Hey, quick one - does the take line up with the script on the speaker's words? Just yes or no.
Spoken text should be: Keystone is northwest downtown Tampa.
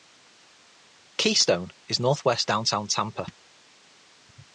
yes